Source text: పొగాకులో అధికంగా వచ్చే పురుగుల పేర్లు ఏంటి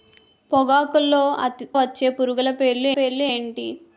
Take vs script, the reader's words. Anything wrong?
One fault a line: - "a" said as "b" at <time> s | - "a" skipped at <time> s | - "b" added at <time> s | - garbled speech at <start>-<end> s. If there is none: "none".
- "అధికంగా" skipped at 1.2 s
- "పేర్లు" added at 3.0 s